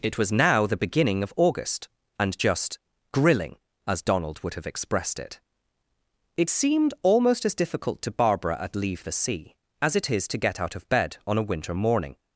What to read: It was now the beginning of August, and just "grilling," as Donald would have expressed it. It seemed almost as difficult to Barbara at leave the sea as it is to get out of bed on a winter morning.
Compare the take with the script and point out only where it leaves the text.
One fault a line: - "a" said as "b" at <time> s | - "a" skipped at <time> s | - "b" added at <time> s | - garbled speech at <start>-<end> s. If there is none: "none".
none